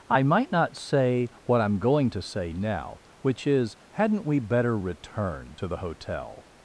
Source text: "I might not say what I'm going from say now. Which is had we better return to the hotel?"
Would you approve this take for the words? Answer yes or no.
no